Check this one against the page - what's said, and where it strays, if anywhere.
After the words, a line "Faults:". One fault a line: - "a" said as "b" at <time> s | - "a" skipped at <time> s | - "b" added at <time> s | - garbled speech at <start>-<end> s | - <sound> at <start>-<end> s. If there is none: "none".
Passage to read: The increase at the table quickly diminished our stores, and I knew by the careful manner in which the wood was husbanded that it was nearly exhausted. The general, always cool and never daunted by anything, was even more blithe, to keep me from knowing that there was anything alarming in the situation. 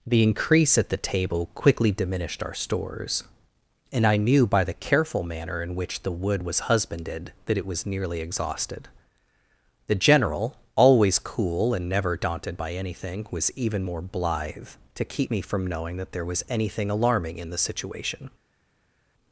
The increase at the table quickly diminished our stores, and I knew by the careful manner in which the wood was husbanded that it was nearly exhausted. The general, always cool and never daunted by anything, was even more blithe, to keep me from knowing that there was anything alarming in the situation.
Faults:
none